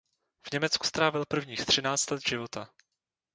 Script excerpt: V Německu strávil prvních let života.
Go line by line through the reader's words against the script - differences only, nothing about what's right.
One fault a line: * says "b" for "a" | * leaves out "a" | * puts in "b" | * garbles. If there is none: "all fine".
* puts in "třináct"